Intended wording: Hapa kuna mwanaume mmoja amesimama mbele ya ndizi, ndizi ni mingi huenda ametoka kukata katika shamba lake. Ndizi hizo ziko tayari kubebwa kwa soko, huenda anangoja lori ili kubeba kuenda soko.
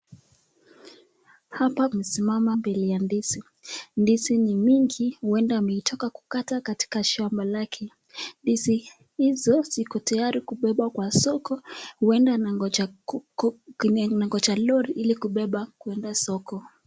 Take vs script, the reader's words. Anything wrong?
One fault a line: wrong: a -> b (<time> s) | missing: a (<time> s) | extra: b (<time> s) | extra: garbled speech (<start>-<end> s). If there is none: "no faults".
missing: kuna mwanaume mmoja (1.9 s)